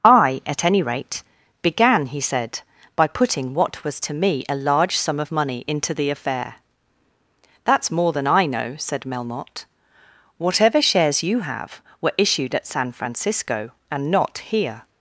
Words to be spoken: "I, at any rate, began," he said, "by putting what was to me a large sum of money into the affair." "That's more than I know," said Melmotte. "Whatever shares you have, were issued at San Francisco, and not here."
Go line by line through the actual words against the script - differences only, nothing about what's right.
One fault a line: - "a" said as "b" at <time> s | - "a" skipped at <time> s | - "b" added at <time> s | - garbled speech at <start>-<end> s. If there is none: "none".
none